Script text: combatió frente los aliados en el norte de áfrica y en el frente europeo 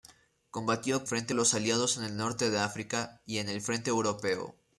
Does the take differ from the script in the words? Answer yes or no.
no